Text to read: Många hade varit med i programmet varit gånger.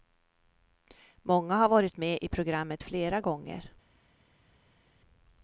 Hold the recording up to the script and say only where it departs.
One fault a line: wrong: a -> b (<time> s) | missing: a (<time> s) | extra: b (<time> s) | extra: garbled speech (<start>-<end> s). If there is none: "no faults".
wrong: hade -> har (1.6 s)
wrong: varit -> flera (2.8 s)